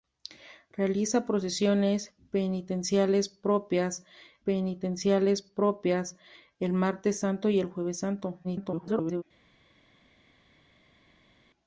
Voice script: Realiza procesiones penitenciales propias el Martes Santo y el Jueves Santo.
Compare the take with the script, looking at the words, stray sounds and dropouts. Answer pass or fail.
fail